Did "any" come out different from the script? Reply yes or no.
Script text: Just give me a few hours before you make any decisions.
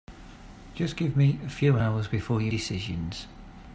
yes